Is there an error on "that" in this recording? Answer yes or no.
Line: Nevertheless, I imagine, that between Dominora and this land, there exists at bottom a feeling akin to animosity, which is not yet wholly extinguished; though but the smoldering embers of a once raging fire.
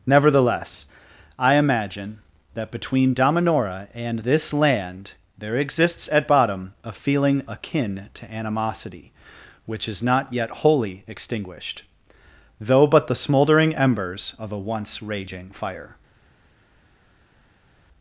no